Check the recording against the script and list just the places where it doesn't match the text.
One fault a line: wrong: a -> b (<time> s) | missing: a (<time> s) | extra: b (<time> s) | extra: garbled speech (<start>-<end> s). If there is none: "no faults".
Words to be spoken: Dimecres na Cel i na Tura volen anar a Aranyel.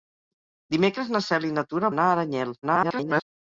missing: volen (1.9 s)
extra: garbled speech (2.6-3.2 s)